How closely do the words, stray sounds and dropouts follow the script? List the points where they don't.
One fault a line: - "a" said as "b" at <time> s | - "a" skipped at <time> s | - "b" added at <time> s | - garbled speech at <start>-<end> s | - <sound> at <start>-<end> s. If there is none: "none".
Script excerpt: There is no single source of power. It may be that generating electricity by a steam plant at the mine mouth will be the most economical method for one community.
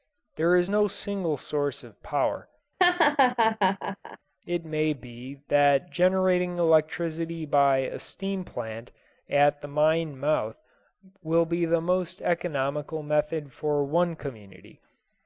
- laugh at 2.8-4.2 s